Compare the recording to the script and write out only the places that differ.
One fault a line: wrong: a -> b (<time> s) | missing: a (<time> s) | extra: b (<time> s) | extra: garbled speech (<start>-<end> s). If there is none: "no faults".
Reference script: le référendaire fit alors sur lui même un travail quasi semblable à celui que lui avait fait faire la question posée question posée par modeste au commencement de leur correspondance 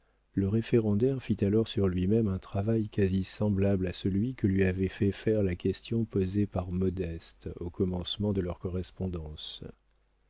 missing: question posée (6.5 s)